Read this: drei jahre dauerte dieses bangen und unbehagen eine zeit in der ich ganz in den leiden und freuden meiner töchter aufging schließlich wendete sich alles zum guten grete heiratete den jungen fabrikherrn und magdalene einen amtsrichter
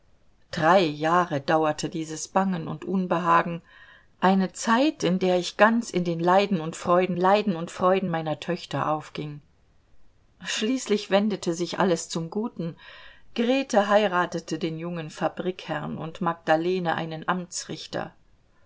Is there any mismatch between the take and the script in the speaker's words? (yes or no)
yes